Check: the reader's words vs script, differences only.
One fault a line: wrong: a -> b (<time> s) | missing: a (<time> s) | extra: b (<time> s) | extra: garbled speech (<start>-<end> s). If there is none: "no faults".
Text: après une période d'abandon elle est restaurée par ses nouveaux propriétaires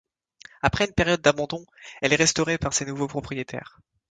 no faults